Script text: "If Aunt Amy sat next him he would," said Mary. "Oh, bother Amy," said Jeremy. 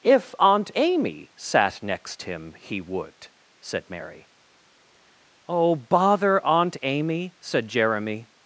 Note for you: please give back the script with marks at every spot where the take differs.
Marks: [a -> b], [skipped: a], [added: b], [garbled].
"If Aunt Amy sat next him he would," said Mary. "Oh, bother [added: Aunt] Amy," said Jeremy.